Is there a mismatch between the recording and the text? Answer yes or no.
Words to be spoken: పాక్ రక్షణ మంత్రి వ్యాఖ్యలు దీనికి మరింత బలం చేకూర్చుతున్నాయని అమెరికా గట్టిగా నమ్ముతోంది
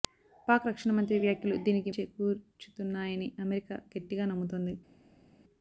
yes